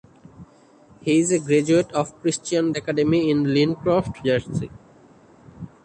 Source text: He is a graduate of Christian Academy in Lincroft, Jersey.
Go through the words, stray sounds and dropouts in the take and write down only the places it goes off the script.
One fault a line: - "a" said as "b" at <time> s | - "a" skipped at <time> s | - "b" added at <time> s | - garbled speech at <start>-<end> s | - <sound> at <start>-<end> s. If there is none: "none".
none